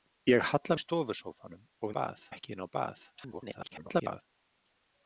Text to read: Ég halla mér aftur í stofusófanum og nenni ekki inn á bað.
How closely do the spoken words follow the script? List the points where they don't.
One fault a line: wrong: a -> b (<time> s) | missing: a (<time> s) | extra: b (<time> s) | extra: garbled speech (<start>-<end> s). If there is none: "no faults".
missing: mér aftur (0.8 s)
wrong: nenni -> bað (2.0 s)
extra: garbled speech (3.1-4.2 s)